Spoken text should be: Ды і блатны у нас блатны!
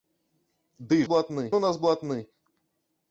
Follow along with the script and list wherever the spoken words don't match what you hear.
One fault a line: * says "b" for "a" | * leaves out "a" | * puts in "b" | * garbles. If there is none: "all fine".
all fine